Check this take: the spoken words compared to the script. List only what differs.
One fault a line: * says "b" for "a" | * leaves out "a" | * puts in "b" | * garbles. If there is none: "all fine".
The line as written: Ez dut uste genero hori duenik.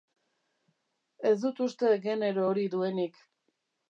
all fine